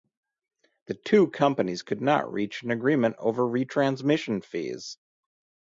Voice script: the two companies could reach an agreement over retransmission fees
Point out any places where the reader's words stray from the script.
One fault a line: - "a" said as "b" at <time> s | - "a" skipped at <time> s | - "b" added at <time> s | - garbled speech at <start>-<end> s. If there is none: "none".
- "not" added at 2.0 s